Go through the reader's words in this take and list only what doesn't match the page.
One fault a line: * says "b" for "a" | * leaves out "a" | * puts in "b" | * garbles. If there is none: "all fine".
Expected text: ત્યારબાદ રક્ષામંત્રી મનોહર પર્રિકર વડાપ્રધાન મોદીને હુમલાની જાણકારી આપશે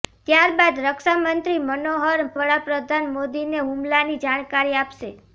* leaves out "પર્રિકર"